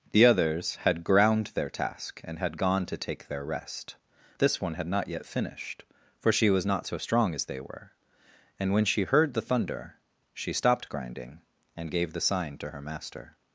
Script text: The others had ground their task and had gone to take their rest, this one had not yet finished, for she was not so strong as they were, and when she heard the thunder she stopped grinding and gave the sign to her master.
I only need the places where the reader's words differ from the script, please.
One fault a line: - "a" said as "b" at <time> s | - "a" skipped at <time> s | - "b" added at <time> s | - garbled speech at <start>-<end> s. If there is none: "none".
none